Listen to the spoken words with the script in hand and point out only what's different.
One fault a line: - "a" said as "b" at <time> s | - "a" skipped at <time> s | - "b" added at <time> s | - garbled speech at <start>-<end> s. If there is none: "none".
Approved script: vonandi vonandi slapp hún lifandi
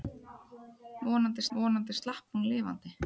none